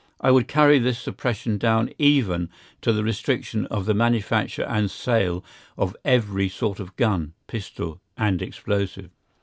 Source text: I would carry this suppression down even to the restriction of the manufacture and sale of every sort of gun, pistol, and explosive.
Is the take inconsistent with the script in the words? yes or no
no